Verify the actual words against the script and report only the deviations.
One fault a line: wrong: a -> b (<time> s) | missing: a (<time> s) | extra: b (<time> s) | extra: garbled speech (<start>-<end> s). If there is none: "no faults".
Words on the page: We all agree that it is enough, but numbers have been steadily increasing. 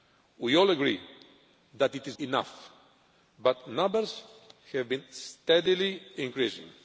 no faults